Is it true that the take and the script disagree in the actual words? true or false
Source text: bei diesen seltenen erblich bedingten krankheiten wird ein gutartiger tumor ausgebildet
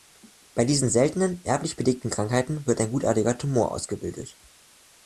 false